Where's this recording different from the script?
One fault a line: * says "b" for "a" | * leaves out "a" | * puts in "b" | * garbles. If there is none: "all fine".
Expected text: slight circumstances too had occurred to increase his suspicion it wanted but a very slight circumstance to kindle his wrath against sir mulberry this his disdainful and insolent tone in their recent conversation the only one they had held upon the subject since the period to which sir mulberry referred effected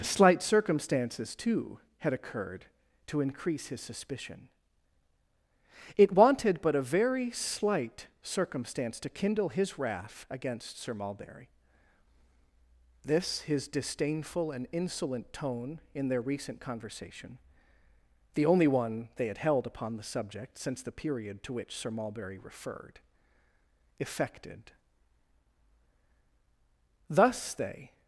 * puts in "thus they"